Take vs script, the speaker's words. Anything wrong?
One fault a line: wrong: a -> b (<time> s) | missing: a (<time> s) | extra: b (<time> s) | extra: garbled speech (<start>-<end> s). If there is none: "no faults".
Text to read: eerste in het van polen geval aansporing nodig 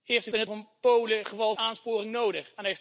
no faults